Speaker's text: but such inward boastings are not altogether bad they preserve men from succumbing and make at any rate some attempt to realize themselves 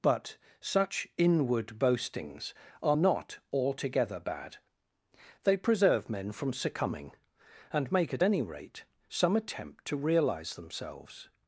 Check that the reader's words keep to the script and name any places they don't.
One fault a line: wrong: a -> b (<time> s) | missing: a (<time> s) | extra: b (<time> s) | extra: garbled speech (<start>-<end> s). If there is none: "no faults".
no faults